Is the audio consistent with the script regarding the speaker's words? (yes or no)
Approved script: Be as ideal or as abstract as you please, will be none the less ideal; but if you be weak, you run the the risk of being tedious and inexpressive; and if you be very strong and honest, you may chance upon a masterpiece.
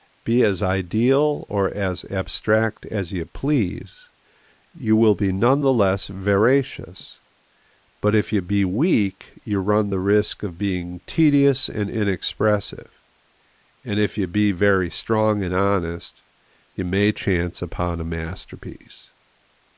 no